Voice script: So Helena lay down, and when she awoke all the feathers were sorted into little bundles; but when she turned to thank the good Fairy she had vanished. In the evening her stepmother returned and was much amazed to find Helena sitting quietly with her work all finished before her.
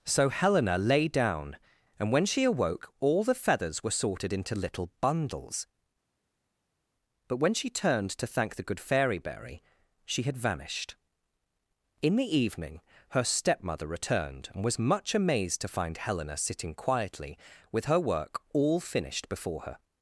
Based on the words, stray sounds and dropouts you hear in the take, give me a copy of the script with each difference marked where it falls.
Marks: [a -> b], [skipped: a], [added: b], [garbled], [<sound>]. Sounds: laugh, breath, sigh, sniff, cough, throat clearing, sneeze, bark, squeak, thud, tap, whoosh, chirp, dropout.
So Helena lay down, and when she awoke all the feathers were sorted into little bundles; but when she turned to thank the good Fairy [added: berry] she had vanished. In the evening her stepmother returned and was much amazed to find Helena sitting quietly with her work all finished before her.